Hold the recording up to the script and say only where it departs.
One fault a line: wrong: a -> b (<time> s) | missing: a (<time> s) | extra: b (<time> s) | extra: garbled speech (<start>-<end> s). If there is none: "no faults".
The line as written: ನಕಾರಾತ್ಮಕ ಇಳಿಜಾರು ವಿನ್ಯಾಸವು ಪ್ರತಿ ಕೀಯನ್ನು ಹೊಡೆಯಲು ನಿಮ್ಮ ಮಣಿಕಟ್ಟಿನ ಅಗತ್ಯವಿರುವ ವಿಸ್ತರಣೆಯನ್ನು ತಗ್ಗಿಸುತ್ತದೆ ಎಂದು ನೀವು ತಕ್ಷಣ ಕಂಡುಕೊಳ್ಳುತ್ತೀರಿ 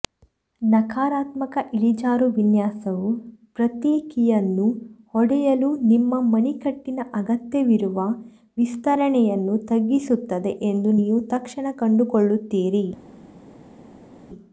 no faults